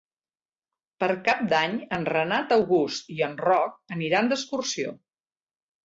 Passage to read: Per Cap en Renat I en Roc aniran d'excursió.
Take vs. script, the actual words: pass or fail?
fail